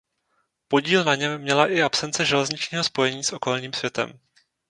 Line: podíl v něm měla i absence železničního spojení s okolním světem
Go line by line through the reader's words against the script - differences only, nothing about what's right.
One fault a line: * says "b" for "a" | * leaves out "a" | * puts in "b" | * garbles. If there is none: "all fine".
* says "na" for "v"